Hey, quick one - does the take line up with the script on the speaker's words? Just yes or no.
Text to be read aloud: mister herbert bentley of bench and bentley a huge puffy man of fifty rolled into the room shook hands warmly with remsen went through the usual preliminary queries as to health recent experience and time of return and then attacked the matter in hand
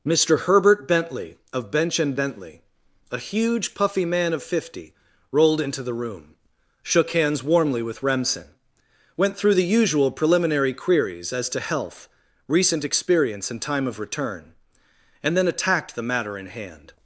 yes